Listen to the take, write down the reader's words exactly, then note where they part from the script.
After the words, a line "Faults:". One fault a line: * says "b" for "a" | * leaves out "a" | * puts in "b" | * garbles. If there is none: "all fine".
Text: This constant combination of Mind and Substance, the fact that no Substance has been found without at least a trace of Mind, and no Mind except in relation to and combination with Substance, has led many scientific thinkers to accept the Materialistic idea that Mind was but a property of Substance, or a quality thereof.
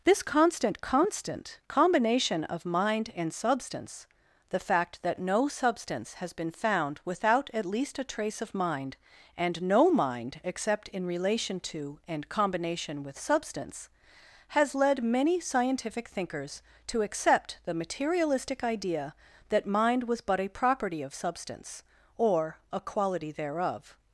This constant constant combination of Mind and Substance, the fact that no Substance has been found without at least a trace of Mind, and no Mind except in relation to and combination with Substance, has led many scientific thinkers to accept the Materialistic idea that Mind was but a property of Substance, or a quality thereof.
Faults:
* puts in "constant"